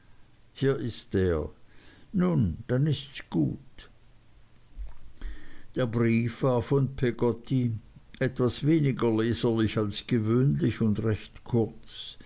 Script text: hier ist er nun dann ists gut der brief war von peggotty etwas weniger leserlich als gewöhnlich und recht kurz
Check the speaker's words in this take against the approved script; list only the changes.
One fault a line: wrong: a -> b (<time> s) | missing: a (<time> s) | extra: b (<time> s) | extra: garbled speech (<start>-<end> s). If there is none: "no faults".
no faults